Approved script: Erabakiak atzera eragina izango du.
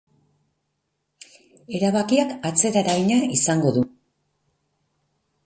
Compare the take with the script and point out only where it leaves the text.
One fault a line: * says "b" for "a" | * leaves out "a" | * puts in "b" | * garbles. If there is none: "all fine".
all fine